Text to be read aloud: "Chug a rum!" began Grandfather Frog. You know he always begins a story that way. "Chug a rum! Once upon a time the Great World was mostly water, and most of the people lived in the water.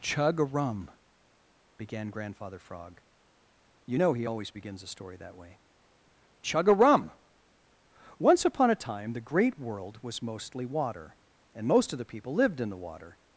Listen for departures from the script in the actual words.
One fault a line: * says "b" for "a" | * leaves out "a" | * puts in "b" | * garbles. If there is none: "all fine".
all fine